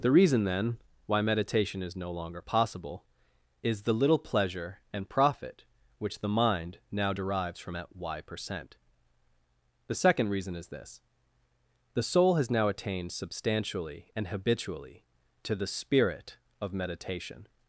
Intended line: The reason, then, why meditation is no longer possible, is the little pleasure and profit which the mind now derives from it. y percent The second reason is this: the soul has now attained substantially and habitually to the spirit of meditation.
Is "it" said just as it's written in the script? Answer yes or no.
no